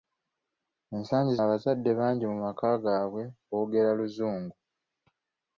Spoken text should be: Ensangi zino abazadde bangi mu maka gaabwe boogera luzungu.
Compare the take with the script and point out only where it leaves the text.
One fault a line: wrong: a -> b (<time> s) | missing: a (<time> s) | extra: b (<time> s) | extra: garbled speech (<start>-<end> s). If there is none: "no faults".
missing: zino (1.3 s)